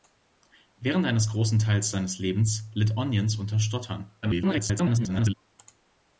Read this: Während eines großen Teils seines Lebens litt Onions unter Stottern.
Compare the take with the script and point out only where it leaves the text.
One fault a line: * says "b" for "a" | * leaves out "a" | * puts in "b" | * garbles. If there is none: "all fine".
* garbles